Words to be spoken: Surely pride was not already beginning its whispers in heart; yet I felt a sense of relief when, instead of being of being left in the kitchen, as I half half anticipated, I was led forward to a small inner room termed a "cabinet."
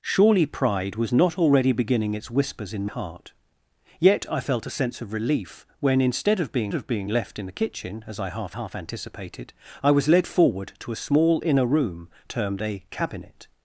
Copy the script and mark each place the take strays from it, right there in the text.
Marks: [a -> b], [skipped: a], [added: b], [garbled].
Surely pride was not already beginning its whispers in heart; yet I felt a sense of relief when, instead of being of being left in the kitchen, as I half half anticipated, I was led forward to a small inner room termed a "cabinet."